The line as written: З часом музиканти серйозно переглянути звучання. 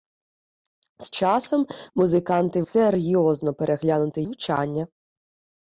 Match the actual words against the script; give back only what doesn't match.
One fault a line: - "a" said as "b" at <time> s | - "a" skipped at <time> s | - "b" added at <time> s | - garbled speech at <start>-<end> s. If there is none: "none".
none